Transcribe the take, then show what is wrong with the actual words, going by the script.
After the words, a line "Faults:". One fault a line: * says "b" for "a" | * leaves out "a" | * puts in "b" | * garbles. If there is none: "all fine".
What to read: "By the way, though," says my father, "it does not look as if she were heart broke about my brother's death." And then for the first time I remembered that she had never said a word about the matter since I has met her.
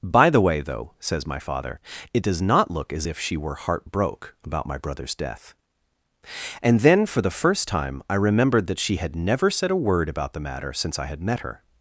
"By the way, though," says my father, "it does not look as if she were heart broke about my brother's death." And then for the first time I remembered that she had never said a word about the matter since I had met her.
Faults:
* says "had" for "has"